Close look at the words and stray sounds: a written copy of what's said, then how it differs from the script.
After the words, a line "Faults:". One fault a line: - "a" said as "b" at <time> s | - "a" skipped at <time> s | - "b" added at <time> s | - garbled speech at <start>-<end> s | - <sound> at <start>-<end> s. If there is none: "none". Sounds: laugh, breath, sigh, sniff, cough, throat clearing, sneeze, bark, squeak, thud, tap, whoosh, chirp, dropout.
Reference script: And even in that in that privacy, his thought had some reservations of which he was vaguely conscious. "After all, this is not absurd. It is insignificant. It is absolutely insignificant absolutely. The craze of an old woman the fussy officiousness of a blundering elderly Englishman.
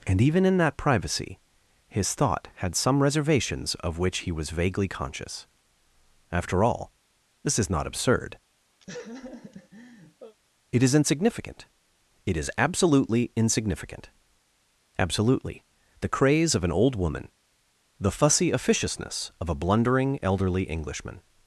And even in that privacy, his thought had some reservations of which he was vaguely conscious. "After all, this is not absurd. It is insignificant. It is absolutely insignificant absolutely. The craze of an old woman the fussy officiousness of a blundering elderly Englishman.
Faults:
- "in that" skipped at 0.8 s
- laugh at 8.8-10.4 s